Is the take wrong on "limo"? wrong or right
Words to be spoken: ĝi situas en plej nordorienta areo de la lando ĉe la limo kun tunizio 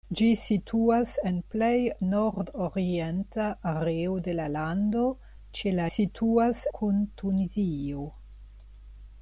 wrong